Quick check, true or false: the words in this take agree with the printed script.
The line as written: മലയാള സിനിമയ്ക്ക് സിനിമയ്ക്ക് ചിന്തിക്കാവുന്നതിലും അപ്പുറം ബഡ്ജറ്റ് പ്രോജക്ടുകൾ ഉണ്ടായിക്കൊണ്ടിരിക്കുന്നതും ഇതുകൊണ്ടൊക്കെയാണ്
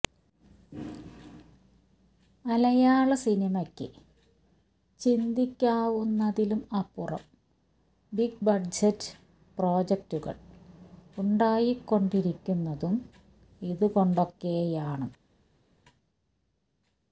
false